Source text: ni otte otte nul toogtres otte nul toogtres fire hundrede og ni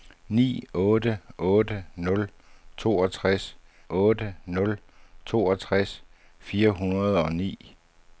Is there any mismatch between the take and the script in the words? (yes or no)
no